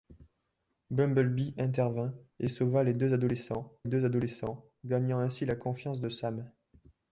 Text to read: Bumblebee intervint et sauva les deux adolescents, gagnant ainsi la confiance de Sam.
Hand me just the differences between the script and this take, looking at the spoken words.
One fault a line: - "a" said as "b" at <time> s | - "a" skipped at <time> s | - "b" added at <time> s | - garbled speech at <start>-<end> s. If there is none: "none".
- "deux adolescents" added at 3.8 s